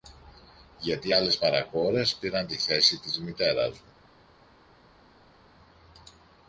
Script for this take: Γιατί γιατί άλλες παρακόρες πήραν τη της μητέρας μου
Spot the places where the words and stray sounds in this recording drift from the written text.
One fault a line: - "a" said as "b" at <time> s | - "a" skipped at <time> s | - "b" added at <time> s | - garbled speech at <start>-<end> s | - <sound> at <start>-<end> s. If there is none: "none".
- "γιατί" skipped at 1.1 s
- "θέση" added at 2.6 s